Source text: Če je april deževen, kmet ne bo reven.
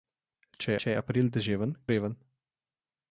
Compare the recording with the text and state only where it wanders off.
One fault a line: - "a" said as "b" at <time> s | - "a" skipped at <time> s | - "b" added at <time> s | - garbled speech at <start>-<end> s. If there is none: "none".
- "če" added at 0.8 s
- "kmet ne bo" skipped at 1.8 s